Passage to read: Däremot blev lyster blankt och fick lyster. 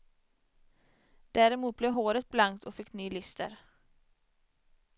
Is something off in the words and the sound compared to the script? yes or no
yes